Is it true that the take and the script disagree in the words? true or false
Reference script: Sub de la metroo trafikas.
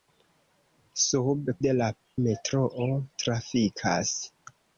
false